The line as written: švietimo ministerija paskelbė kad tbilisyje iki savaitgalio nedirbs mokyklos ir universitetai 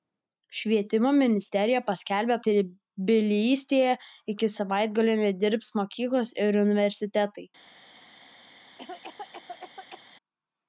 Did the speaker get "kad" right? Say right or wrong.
wrong